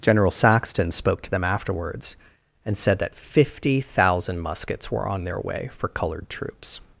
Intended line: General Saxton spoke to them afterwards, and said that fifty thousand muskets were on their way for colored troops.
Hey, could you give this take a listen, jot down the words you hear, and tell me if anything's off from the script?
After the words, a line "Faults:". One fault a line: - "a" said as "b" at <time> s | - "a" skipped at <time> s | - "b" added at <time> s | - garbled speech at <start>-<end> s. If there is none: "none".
General Saxton spoke to them afterwards, and said that fifty thousand muskets were on their way for colored troops.
Faults:
none